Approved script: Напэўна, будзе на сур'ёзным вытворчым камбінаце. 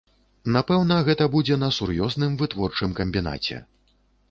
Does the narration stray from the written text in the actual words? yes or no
yes